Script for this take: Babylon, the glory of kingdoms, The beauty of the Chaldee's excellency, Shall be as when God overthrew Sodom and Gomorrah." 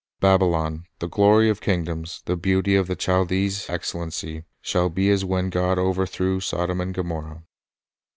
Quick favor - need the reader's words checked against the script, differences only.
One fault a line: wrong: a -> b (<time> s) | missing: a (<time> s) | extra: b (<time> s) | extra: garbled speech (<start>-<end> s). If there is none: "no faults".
no faults